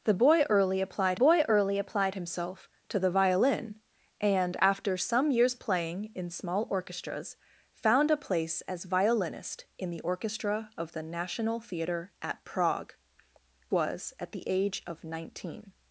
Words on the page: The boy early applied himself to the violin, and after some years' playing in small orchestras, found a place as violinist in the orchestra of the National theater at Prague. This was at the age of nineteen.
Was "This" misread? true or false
true